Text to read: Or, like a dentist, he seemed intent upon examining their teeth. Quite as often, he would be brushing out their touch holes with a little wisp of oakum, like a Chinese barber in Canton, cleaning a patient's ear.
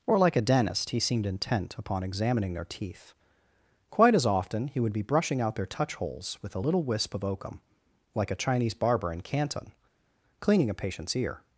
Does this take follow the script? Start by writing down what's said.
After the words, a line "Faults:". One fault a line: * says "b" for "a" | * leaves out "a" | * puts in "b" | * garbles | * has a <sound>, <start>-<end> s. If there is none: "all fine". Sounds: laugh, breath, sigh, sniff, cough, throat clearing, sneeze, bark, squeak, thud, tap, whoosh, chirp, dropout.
Or, like a dentist, he seemed intent upon examining their teeth. Quite as often, he would be brushing out their touch holes with a little wisp of oakum, like a Chinese barber in Canton, cleaning a patient's ear.
Faults:
all fine